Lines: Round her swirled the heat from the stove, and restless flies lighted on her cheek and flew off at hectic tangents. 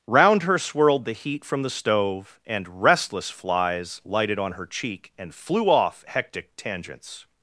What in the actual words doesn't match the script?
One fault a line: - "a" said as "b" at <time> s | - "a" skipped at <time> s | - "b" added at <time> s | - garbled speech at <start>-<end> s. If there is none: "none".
- "at" skipped at 6.0 s